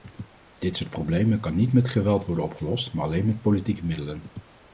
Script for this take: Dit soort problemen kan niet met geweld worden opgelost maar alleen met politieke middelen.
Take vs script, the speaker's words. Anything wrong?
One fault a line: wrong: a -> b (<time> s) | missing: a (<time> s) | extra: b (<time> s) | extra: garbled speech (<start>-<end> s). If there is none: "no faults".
no faults